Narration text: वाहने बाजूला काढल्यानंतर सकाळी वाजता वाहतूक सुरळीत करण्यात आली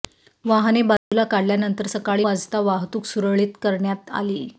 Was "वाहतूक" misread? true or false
false